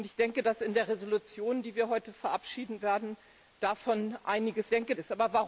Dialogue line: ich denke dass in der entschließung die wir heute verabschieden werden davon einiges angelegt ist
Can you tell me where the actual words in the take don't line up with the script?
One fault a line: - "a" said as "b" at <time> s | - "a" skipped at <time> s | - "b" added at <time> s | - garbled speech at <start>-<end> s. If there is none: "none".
- "angelegt" said as "denke" at 4.7 s